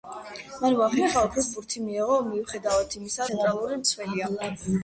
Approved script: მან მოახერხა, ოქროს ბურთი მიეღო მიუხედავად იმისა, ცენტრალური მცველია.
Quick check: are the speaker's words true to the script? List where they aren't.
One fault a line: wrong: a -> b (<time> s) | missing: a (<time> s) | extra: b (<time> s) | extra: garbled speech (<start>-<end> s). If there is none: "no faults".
no faults